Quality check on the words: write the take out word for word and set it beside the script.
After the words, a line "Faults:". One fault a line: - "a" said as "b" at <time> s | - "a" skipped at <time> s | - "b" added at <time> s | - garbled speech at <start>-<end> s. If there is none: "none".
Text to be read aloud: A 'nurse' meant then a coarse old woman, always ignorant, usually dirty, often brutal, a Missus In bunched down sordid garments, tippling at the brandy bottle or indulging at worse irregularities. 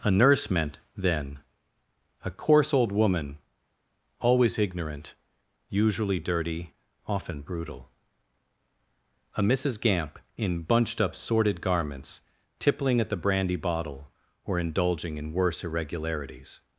A 'nurse' meant then a coarse old woman, always ignorant, usually dirty, often brutal, a Missus Gamp, in bunched up sordid garments, tippling at the brandy bottle or indulging in worse irregularities.
Faults:
- "Gamp" added at 9.8 s
- "down" said as "up" at 11.0 s
- "at" said as "in" at 15.2 s